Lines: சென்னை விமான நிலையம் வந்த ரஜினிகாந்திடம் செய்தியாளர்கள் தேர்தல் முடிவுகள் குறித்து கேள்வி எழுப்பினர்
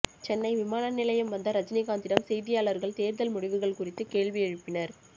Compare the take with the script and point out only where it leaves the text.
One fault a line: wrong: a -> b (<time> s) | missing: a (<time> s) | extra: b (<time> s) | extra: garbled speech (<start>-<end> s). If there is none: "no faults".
no faults